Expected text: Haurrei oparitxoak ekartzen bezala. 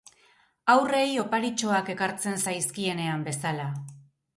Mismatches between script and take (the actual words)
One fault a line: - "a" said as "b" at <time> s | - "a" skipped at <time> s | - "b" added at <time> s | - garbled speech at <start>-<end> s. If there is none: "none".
- "zaizkienean" added at 2.5 s